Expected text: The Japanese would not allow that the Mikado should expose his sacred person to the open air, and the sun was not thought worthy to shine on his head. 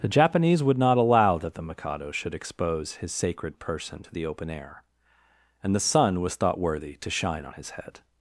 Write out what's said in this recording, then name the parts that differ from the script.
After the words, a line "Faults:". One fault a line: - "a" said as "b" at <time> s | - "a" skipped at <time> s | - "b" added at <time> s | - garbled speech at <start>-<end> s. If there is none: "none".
The Japanese would not allow that the Mikado should expose his sacred person to the open air, and the sun was thought worthy to shine on his head.
Faults:
- "not" skipped at 6.4 s